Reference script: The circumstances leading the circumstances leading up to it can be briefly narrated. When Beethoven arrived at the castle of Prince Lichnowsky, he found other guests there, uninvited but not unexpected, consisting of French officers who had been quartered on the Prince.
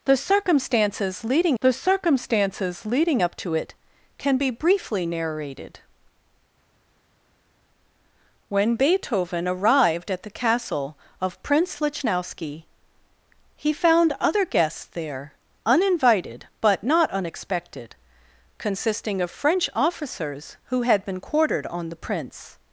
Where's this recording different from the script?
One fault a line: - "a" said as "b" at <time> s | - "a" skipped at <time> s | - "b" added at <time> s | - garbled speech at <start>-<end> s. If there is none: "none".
none